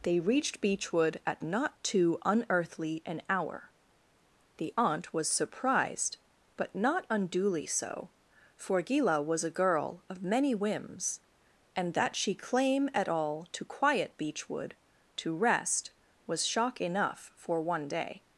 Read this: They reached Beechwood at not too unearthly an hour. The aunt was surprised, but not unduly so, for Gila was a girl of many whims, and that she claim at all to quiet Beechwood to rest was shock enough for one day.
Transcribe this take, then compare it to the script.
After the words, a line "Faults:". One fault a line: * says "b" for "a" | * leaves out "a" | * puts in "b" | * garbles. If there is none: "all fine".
They reached Beechwood at not too unearthly an hour. The aunt was surprised, but not unduly so, for Gila was a girl of many whims, and that she claim at all to quiet Beechwood to rest was shock enough for one day.
Faults:
all fine